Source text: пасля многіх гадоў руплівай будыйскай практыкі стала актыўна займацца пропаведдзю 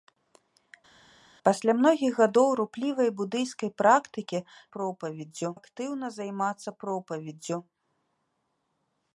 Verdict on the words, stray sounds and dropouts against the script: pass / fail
fail